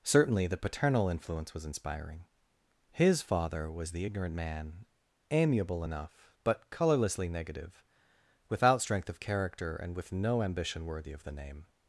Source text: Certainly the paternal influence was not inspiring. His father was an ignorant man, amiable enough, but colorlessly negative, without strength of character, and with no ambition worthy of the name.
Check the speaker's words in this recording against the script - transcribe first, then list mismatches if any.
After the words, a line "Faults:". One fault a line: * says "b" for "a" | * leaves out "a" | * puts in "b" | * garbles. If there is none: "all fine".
Certainly the paternal influence was inspiring. His father was the ignorant man, amiable enough, but colorlessly negative, without strength of character, and with no ambition worthy of the name.
Faults:
* leaves out "not"
* says "the" for "an"